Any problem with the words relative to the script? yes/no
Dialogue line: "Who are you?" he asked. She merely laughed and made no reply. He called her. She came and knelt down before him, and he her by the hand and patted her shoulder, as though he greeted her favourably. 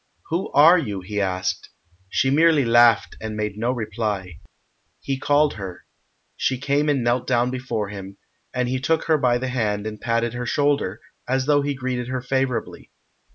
yes